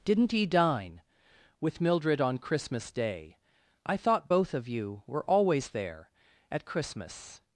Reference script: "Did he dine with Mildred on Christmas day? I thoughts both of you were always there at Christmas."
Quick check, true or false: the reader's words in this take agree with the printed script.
false